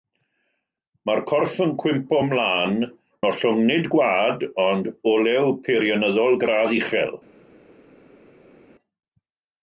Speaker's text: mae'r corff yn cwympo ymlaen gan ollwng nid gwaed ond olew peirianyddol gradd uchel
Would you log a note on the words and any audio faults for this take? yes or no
yes